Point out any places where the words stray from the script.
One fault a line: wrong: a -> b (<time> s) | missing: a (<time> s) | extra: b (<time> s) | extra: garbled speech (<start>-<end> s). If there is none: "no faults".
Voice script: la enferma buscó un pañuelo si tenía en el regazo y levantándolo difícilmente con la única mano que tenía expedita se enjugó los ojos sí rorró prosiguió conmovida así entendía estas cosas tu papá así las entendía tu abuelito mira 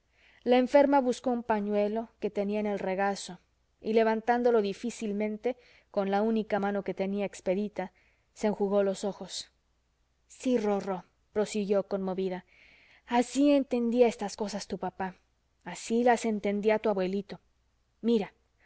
wrong: si -> que (2.2 s)